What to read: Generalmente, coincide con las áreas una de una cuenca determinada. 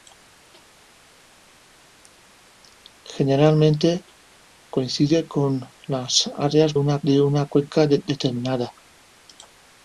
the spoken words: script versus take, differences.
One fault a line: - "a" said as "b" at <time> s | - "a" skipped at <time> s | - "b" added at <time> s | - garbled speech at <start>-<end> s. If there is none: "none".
none